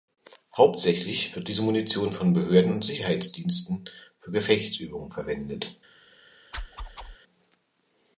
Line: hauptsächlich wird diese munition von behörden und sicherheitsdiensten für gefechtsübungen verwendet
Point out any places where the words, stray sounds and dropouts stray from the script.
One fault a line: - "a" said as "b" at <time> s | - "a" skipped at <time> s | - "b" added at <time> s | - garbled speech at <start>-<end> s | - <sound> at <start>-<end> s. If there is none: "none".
- whoosh at 6.5-7.2 s